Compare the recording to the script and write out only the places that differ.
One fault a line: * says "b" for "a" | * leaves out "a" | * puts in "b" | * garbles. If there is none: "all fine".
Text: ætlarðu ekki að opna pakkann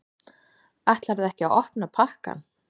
all fine